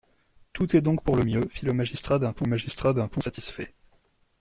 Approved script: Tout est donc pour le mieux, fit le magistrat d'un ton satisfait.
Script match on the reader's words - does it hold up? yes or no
no